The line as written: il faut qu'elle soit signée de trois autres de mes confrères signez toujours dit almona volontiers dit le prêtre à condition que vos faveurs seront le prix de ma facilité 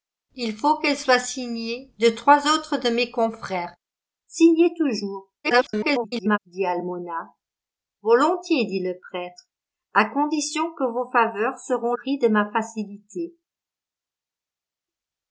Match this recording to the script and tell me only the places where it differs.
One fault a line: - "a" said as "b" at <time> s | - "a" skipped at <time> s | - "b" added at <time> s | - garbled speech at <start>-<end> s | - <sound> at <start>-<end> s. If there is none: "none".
- garbled speech at 5.4-6.4 s
- "le" skipped at 11.9 s